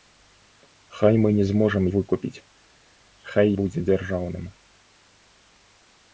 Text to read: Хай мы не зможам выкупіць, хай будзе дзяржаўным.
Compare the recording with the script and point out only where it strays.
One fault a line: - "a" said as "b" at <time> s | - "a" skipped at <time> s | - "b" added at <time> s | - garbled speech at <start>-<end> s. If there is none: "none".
none